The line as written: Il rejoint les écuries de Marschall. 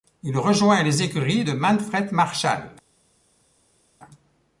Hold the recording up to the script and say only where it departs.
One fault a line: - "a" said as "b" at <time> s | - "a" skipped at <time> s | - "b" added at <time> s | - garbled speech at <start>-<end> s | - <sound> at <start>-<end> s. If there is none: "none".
- "Manfred" added at 1.5 s